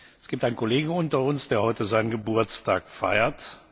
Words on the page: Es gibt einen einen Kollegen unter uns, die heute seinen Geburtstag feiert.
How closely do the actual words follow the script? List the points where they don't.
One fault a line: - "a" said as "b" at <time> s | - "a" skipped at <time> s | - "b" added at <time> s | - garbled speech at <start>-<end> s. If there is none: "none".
- "einen" skipped at 0.6 s
- "die" said as "der" at 1.5 s